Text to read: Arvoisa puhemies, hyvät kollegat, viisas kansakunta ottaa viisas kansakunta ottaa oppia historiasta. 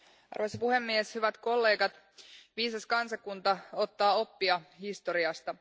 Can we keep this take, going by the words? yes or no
no